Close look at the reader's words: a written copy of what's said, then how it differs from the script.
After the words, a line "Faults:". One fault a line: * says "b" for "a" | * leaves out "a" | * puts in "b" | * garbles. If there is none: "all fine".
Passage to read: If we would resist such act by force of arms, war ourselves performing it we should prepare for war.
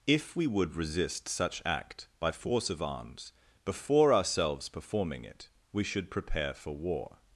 If we would resist such act by force of arms, before ourselves performing it we should prepare for war.
Faults:
* says "before" for "war"